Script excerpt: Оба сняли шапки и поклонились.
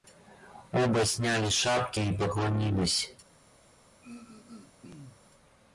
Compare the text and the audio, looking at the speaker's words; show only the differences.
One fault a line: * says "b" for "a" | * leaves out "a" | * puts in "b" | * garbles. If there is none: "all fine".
all fine